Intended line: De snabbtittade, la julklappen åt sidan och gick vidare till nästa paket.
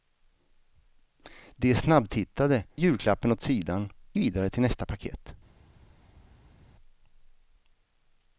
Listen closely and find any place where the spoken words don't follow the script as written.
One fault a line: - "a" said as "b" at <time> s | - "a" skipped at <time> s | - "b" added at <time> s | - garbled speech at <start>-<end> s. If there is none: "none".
- "la" skipped at 2.6 s
- "och gick" skipped at 3.9 s